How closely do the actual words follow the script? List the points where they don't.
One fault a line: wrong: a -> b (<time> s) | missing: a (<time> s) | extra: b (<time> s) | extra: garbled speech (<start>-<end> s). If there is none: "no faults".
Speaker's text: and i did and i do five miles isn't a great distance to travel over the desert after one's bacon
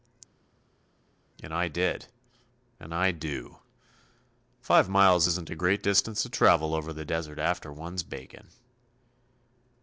no faults